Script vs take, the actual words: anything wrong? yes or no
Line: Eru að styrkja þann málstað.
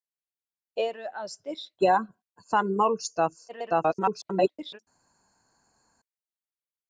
yes